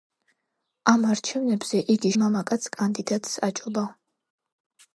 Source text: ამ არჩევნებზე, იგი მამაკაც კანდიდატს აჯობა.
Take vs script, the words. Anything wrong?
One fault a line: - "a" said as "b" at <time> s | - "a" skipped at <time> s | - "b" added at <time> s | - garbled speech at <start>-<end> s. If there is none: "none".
none